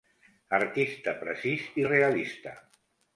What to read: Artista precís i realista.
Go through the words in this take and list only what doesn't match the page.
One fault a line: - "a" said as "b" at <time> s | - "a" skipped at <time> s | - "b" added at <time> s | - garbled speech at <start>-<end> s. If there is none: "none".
none